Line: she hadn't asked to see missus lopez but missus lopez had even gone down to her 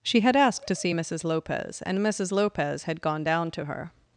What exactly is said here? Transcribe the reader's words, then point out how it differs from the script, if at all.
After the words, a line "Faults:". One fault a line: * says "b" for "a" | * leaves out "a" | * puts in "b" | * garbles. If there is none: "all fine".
she had asked to see missus lopez and missus lopez had gone down to her
Faults:
* says "had" for "hadn't"
* says "and" for "but"
* leaves out "even"